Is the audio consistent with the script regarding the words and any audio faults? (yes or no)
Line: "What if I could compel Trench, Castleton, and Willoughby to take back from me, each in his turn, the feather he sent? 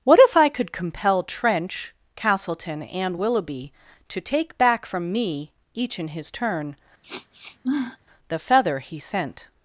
no